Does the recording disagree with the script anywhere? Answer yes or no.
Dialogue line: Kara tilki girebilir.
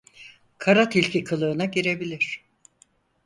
yes